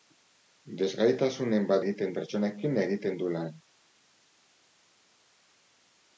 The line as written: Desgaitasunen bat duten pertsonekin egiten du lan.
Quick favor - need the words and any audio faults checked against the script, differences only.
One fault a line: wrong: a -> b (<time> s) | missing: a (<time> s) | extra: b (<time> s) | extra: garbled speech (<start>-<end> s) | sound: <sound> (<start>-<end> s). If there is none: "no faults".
wrong: duten -> egiten (1.8 s)